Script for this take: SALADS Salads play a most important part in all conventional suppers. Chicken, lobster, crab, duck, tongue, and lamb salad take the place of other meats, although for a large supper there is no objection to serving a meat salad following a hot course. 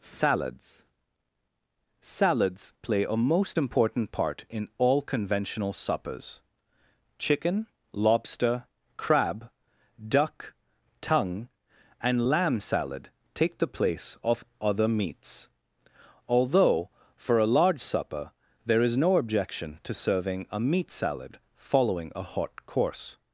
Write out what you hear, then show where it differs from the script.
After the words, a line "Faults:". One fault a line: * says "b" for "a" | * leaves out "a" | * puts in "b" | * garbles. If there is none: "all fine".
SALADS Salads play a most important part in all conventional suppers. Chicken, lobster, crab, duck, tongue, and lamb salad take the place of other meats, although for a large supper there is no objection to serving a meat salad following a hot course.
Faults:
all fine